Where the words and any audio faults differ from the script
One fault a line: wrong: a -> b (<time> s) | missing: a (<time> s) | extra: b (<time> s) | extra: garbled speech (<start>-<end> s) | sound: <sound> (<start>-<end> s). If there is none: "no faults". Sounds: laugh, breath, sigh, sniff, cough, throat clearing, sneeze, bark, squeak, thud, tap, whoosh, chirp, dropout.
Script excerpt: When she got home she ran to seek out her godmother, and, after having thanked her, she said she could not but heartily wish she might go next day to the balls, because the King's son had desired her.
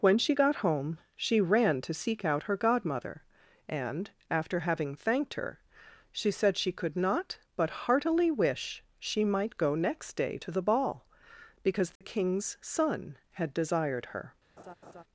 wrong: balls -> ball (10.6 s)
sound: dropout (12.0-12.0 s)
sound: laugh (14.6-15.0 s)